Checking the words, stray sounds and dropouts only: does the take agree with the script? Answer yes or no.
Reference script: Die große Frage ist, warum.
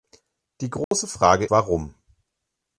no